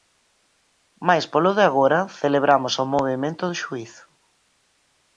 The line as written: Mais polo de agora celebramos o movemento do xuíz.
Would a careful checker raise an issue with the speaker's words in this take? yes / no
no